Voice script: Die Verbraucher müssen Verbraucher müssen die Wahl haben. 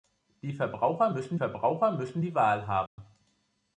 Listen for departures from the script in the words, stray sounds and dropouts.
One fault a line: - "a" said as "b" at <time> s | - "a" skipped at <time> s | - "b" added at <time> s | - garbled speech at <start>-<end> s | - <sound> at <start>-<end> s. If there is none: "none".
- dropout at 2.9-3.0 s